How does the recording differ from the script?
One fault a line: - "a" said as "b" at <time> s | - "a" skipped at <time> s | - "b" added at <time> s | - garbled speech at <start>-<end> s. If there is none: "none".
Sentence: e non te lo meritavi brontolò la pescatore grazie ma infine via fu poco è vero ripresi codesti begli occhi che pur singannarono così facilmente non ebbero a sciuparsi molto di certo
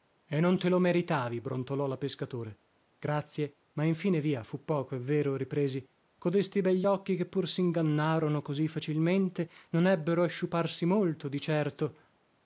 none